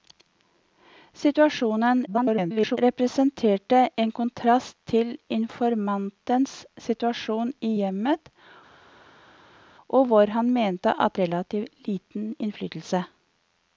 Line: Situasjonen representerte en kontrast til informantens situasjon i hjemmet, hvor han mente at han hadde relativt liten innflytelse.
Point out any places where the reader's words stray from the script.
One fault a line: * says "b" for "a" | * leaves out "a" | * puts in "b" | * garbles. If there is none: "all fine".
* garbles
* leaves out "han hadde"